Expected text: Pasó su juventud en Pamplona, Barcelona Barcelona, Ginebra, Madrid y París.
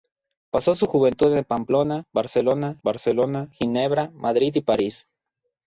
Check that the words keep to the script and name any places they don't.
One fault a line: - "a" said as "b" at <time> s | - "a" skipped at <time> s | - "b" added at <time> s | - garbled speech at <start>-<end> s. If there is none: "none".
none